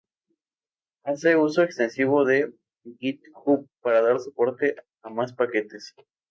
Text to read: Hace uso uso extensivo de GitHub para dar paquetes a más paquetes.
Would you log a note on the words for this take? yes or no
yes